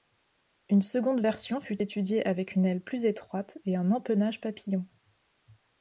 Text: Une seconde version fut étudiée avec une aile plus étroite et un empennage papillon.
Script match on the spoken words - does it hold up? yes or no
yes